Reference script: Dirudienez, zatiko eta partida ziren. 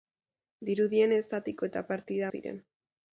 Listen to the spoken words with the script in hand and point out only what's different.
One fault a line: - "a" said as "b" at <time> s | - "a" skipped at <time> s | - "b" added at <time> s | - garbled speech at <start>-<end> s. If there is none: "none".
none